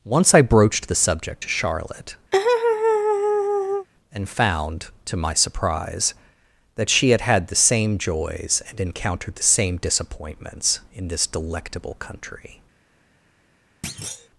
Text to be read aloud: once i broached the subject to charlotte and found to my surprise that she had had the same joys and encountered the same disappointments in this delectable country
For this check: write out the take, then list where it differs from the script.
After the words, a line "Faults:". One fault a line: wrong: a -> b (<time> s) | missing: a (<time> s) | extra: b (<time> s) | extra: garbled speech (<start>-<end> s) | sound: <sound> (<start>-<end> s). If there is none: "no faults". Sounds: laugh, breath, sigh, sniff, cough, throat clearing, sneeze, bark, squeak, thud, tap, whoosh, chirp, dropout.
once i broached the subject to charlotte and found to my surprise that she had had the same joys and encountered the same disappointments in this delectable country
Faults:
sound: laugh (2.3-3.9 s)
sound: thud (13.8-14.3 s)